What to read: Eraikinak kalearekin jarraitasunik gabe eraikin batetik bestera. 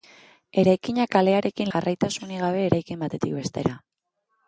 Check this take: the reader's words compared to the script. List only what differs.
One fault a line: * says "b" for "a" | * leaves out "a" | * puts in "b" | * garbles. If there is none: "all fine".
all fine